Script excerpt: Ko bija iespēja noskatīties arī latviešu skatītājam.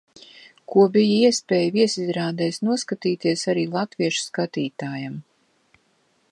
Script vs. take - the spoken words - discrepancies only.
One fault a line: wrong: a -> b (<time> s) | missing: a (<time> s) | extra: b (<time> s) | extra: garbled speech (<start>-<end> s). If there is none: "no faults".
extra: viesizrādēs (1.7 s)